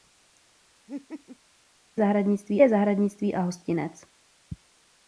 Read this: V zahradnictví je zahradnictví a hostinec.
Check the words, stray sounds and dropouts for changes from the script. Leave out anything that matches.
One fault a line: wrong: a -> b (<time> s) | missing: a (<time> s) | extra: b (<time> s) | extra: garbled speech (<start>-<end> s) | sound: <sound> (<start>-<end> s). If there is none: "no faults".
sound: laugh (0.9-1.4 s)